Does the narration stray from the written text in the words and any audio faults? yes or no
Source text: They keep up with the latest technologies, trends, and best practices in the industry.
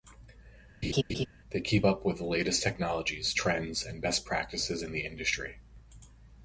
yes